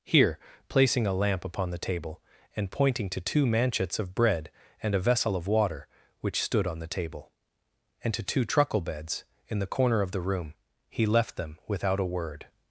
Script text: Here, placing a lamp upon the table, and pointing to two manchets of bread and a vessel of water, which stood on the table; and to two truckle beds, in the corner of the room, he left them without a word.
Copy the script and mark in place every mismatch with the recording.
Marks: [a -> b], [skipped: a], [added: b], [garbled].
Here, placing a lamp upon the table, and pointing to two manchets of bread and a vessel of water, which stood on the table; and to two truckle beds, in the corner of the room, he left them without a word.